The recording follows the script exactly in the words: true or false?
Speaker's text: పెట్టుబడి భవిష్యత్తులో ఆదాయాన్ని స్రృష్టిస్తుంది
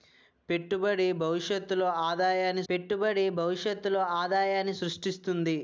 false